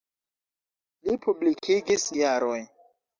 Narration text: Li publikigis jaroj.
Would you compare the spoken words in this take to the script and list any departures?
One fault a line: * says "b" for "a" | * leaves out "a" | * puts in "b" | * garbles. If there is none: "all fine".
all fine